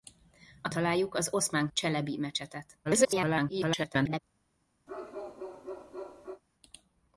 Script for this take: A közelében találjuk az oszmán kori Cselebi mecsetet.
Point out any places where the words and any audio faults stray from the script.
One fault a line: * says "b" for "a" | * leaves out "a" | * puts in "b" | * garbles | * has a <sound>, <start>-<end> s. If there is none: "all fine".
* leaves out "közelében"
* leaves out "kori"
* garbles
* has a bark, 4.9-6.4 s